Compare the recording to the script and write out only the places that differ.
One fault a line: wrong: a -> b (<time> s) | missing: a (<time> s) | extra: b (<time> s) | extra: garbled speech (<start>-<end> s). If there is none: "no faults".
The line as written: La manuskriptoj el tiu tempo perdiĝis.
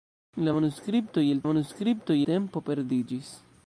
wrong: tiu -> manuskriptoj (1.5 s)